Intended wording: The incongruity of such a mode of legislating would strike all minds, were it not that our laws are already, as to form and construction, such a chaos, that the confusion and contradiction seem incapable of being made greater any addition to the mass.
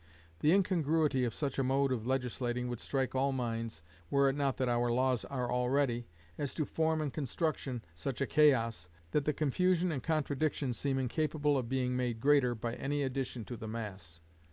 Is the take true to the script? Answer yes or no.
no